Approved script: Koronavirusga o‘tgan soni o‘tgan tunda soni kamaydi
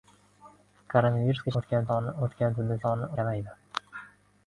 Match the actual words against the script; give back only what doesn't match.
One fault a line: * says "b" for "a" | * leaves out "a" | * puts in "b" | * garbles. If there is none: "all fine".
all fine